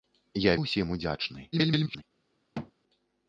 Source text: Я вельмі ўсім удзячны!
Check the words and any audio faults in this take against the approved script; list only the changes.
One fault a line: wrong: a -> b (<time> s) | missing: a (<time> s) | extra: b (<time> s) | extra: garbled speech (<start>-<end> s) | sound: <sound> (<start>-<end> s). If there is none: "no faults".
missing: вельмі (0.5 s)
extra: garbled speech (1.5-2.0 s)
sound: thud (2.5-2.7 s)